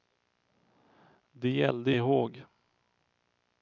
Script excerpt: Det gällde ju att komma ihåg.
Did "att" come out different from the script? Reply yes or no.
yes